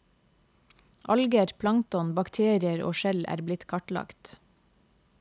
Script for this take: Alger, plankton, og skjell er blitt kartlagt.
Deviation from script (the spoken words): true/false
true